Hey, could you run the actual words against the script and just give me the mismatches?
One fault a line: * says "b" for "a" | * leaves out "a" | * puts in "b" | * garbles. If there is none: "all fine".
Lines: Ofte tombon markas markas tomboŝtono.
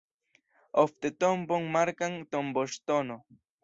* leaves out "markas"